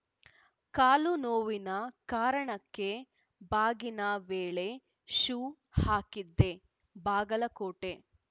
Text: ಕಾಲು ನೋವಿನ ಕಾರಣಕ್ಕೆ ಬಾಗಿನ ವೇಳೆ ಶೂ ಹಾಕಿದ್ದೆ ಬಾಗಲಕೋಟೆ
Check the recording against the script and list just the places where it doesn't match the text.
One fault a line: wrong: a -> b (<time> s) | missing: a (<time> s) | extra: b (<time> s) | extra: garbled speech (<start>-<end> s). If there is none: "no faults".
no faults